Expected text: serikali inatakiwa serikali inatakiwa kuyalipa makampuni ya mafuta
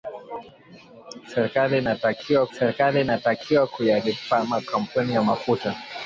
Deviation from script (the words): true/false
false